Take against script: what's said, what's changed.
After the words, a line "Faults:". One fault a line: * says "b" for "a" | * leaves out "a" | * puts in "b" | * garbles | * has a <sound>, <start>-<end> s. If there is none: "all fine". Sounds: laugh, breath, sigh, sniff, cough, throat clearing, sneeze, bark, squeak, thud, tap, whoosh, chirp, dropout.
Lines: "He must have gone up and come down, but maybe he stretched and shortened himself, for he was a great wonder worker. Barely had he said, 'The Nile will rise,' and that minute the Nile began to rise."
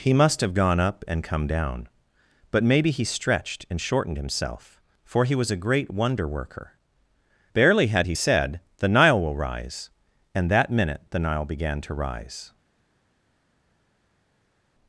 "He must have gone up and come down, but maybe he stretched and shortened himself, for he was a great wonder worker. Barely had he said, 'The Nile will rise,' and that minute the Nile began to rise."
Faults:
all fine